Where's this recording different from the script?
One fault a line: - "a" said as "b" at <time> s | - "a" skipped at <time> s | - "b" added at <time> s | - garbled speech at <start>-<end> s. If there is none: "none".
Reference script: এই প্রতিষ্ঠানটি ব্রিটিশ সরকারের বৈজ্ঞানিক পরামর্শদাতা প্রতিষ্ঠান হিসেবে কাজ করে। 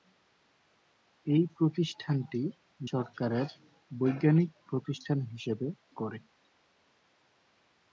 - "ব্রিটিশ" skipped at 2.4 s
- "পরামর্শদাতা" skipped at 4.5 s
- "কাজ" skipped at 5.7 s